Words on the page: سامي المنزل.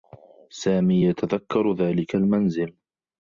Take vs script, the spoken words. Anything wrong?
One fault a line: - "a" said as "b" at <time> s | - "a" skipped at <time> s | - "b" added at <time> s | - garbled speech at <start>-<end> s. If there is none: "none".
- "يتذكّر ذلك" added at 1.0 s